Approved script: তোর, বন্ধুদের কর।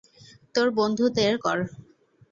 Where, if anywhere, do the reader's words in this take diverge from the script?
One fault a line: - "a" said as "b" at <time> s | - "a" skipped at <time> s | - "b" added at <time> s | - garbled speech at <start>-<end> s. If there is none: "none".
none